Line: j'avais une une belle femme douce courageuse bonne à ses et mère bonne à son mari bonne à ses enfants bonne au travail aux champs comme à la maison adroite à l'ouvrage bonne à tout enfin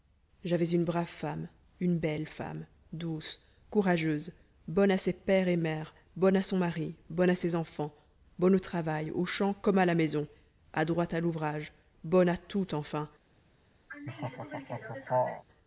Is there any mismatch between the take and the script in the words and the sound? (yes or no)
yes